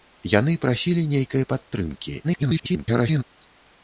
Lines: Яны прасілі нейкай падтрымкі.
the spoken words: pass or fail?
fail